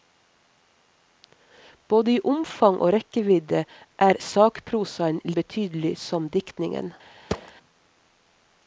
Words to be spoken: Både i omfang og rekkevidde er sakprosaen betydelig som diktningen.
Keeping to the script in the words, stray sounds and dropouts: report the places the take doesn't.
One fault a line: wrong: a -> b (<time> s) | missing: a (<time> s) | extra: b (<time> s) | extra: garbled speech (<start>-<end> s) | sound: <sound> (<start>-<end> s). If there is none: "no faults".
sound: thud (7.3-7.5 s)